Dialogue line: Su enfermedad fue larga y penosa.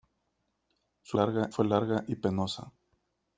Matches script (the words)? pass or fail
fail